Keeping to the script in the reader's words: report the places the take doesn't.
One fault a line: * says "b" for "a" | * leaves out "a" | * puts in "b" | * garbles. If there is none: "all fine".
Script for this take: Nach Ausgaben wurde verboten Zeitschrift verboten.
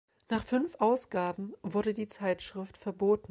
* puts in "fünf"
* says "die" for "verboten"